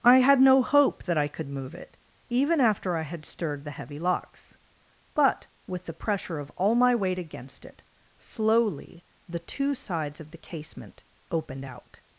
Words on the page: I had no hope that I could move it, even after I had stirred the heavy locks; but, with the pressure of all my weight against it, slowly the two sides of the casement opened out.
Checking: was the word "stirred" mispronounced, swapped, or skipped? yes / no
no